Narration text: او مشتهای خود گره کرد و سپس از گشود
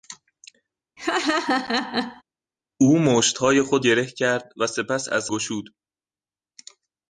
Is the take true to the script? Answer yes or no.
yes